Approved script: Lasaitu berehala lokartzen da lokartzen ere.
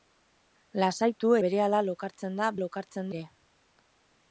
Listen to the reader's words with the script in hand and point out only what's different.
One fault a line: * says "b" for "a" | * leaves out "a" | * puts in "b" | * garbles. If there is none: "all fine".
all fine